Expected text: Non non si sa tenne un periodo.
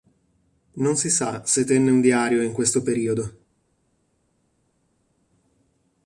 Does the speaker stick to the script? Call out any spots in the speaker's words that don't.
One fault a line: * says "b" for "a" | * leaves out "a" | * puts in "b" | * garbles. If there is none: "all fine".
* leaves out "non"
* puts in "se"
* puts in "diario in questo"